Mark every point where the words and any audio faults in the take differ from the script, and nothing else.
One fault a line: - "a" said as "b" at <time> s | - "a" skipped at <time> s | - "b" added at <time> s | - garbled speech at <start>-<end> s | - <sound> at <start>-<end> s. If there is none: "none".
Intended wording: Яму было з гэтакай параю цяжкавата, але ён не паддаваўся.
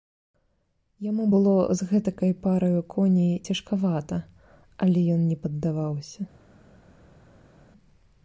- "коней" added at 3.0 s